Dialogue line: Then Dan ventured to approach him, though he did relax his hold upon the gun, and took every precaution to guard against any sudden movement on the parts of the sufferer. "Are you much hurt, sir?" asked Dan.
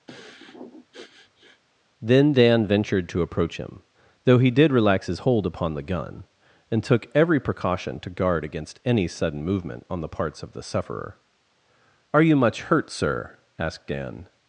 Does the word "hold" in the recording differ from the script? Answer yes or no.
no